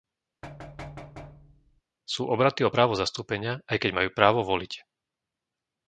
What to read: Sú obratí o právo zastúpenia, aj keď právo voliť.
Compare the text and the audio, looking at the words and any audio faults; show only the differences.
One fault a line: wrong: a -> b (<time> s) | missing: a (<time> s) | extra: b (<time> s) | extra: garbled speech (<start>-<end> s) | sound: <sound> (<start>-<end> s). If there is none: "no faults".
sound: thud (0.4-1.8 s)
extra: majú (4.0 s)